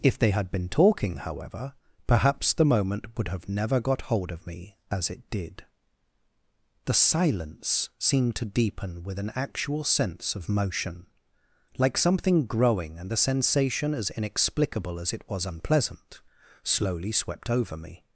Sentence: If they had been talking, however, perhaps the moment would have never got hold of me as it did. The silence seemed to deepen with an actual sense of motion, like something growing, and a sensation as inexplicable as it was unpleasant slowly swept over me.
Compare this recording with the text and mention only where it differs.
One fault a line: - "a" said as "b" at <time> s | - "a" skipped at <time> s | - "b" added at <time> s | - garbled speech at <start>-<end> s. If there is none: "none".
- "a" said as "the" at 13.1 s